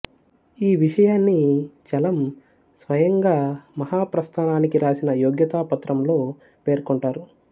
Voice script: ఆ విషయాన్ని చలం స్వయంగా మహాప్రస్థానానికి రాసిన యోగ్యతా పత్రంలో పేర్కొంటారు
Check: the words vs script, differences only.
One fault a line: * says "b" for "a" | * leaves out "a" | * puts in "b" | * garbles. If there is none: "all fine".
* says "ఈ" for "ఆ"